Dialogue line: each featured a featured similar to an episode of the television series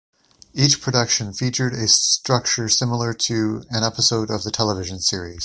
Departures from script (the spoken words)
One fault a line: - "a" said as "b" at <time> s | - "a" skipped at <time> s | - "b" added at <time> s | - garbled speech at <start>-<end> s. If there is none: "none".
- "production" added at 0.8 s
- "featured" said as "structure" at 1.9 s